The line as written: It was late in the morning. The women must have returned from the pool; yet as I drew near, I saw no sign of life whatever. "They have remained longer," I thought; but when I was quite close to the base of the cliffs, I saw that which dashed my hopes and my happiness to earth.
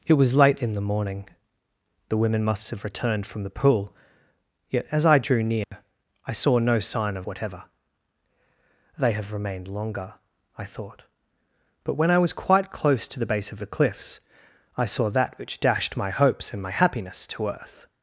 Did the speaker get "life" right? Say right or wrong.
wrong